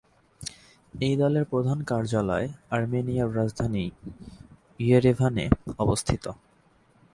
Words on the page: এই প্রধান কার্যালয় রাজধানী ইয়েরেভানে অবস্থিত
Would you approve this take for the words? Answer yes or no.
no